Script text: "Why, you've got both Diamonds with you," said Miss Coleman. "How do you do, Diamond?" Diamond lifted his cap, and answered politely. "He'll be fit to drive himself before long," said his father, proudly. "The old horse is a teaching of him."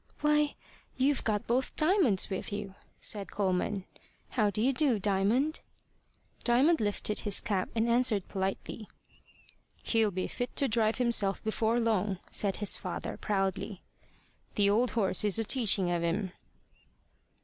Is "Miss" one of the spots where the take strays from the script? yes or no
yes